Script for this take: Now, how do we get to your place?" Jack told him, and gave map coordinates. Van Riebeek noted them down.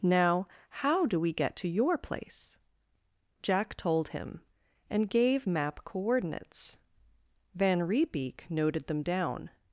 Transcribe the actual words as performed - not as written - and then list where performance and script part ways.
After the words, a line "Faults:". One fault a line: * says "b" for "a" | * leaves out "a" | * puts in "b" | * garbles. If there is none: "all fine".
Now, how do we get to your place?" Jack told him, and gave map coordinates. Van Riebeek noted them down.
Faults:
all fine